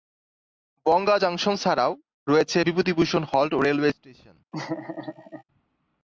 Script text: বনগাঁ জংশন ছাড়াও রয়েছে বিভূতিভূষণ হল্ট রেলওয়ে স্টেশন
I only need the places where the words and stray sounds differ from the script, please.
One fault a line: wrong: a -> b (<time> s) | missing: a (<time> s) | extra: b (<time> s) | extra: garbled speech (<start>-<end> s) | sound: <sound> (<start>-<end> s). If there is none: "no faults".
sound: laugh (4.5-5.4 s)